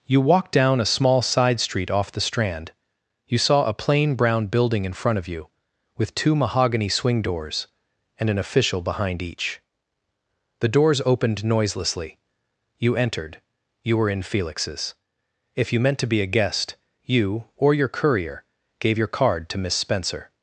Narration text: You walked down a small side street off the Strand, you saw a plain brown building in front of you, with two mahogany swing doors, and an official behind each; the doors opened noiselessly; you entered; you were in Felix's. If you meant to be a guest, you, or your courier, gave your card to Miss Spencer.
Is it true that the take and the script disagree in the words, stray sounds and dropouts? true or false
false